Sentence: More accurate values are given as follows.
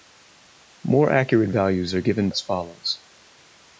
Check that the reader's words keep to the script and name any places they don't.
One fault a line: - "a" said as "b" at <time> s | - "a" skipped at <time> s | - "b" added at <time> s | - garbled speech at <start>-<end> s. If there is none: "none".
none